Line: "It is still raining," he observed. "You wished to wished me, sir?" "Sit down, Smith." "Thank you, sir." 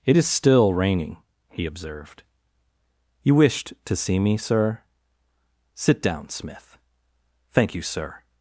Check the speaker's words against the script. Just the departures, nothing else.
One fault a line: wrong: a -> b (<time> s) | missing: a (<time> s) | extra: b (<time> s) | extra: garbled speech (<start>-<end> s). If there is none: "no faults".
wrong: wished -> see (4.0 s)